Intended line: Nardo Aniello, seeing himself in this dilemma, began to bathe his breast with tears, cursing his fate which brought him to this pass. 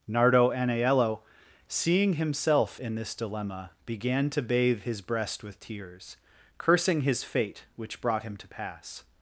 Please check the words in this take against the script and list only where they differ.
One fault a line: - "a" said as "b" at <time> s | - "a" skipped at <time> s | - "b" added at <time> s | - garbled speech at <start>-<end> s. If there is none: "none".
- "this" skipped at 8.5 s